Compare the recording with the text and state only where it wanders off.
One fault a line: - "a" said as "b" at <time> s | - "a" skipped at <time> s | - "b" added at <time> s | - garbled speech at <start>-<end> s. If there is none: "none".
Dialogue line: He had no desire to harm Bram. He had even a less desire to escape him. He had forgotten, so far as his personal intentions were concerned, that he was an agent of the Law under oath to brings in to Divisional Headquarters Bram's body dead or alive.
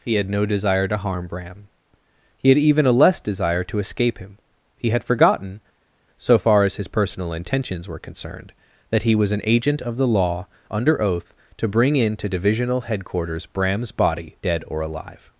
- "brings" said as "bring" at 11.7 s